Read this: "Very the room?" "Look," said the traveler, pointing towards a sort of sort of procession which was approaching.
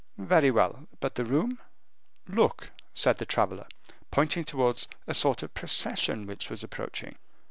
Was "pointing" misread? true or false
false